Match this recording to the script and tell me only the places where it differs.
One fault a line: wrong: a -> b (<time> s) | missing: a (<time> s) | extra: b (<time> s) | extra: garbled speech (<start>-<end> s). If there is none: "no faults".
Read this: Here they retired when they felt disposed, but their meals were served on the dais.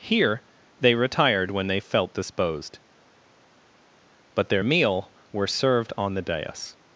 wrong: meals -> meal (4.6 s)